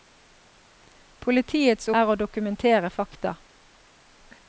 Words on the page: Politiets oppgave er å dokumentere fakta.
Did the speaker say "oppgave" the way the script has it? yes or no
no